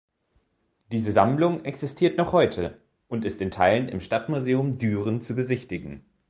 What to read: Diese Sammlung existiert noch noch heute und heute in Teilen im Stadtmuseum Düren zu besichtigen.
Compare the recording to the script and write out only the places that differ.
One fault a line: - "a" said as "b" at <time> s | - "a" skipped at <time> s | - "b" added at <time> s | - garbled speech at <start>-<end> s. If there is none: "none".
- "noch" skipped at 2.3 s
- "heute" said as "ist" at 3.2 s